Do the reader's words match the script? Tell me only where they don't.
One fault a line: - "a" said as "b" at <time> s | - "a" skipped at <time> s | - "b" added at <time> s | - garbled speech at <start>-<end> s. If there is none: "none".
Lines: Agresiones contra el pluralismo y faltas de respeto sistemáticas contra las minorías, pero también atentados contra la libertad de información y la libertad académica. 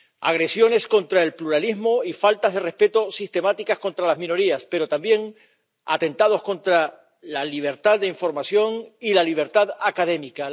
none